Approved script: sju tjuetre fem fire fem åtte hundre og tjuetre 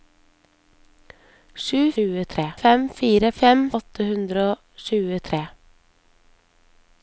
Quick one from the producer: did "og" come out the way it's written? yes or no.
yes